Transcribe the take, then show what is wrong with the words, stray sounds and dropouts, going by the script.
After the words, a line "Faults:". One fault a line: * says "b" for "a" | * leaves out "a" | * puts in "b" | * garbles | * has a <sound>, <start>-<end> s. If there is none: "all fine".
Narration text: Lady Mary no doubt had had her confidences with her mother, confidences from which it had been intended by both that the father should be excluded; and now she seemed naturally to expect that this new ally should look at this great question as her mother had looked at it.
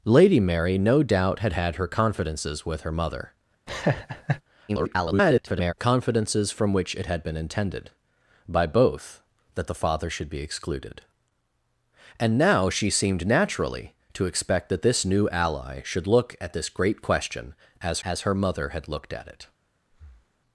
Lady Mary no doubt had had her confidences with her mother, [garbled] confidences from which it had been intended by both that the father should be excluded; and now she seemed naturally to expect that this new ally should look at this great question as as her mother had looked at it.
Faults:
* has a laugh, 3.7-4.4 s
* garbles
* puts in "as"
* has a breath, 19.9-20.4 s